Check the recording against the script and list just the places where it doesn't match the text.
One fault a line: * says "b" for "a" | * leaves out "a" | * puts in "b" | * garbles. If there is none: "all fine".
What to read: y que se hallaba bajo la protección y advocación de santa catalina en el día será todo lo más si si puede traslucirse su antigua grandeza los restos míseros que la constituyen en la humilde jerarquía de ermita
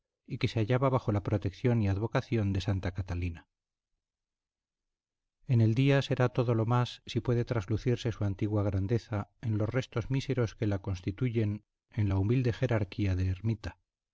* leaves out "si"
* puts in "en"